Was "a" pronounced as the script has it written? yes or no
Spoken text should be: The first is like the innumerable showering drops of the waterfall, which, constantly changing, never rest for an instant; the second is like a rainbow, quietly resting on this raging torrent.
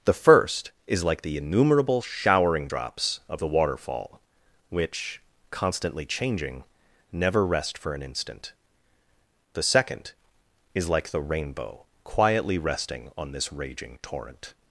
no